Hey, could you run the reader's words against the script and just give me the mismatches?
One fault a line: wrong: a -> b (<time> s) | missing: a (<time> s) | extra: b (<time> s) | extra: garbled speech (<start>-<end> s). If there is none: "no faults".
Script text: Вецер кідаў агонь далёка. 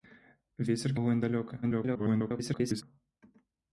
missing: кідаў (0.9 s)
extra: garbled speech (1.6-2.8 s)